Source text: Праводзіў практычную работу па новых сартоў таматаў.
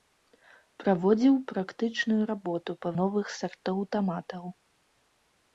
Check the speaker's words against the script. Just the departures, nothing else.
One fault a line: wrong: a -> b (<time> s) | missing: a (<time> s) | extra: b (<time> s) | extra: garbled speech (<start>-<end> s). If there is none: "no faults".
no faults